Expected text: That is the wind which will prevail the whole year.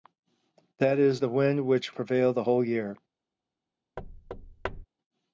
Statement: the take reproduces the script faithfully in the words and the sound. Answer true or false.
false